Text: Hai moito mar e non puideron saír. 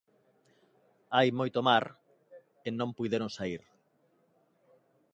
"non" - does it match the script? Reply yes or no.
yes